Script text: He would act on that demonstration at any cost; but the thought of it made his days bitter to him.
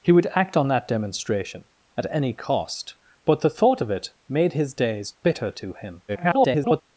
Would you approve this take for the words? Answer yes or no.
no